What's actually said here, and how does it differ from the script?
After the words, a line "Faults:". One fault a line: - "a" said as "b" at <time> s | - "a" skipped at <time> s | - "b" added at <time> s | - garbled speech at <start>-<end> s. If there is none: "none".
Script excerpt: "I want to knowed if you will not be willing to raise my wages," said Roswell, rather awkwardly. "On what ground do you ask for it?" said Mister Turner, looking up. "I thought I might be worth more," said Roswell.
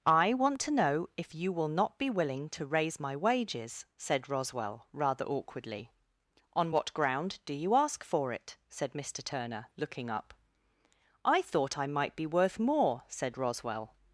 "I want to know if you will not be willing to raise my wages," said Roswell, rather awkwardly. "On what ground do you ask for it?" said Mister Turner, looking up. "I thought I might be worth more," said Roswell.
Faults:
- "knowed" said as "know" at 0.7 s